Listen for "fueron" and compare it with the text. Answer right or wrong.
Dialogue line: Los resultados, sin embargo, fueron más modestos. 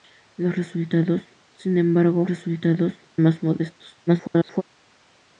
wrong